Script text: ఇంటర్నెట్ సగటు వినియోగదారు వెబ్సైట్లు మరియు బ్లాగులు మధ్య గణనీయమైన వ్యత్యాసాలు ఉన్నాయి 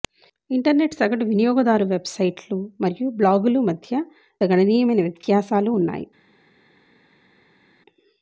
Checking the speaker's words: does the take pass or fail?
pass